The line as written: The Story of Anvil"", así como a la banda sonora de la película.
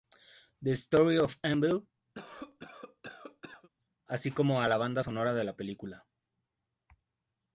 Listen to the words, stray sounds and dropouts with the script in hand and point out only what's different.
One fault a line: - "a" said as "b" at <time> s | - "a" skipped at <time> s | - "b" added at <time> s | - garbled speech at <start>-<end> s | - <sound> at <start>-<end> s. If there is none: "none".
- cough at 2.1-3.7 s